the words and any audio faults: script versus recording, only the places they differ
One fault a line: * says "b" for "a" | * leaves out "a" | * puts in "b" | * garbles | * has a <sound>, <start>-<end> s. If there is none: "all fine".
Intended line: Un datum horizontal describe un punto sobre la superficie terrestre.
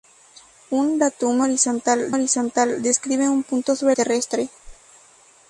* puts in "horizontal"
* leaves out "la superficie"
* has a whoosh, 4.6-4.8 s